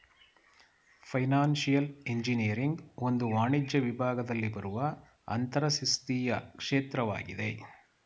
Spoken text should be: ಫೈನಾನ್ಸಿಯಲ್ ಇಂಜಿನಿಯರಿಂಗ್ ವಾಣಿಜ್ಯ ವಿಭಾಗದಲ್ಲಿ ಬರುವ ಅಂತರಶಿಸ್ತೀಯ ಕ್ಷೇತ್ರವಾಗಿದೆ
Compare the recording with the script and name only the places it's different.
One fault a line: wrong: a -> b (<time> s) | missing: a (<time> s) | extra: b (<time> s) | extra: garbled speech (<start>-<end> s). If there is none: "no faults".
extra: ಒಂದು (3.0 s)